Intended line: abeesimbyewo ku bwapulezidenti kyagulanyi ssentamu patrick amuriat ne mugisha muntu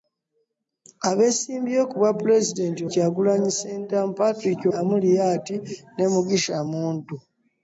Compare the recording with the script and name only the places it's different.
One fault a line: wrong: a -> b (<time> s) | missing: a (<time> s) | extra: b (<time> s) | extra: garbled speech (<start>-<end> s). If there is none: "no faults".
no faults